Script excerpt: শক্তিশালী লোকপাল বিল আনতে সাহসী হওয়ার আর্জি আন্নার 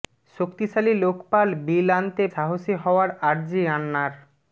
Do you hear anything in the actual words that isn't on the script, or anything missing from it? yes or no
no